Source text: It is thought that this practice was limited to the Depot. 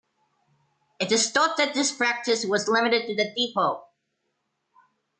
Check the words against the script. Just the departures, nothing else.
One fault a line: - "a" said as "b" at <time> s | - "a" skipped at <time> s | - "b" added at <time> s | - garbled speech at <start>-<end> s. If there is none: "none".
none